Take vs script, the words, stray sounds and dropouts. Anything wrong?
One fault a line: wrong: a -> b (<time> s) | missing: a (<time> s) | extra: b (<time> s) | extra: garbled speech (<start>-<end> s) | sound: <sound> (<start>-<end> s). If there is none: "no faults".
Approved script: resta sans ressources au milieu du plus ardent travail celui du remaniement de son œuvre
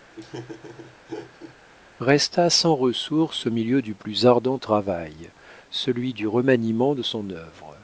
sound: laugh (0.1-1.6 s)